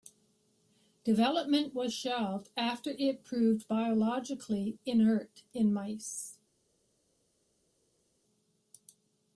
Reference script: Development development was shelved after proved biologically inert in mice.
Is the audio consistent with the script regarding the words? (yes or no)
no